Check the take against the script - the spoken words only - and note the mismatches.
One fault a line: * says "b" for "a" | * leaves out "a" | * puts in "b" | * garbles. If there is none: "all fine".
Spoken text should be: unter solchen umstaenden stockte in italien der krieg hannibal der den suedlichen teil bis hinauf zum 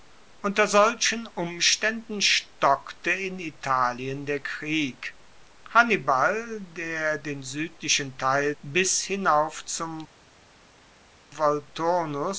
all fine